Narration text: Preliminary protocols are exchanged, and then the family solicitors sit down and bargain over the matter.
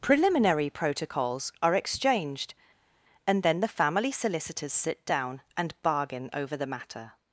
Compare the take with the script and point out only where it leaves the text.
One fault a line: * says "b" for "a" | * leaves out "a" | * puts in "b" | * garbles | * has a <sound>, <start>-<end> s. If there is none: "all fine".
all fine